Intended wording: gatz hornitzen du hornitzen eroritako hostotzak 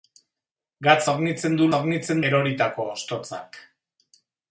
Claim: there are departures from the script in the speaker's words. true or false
false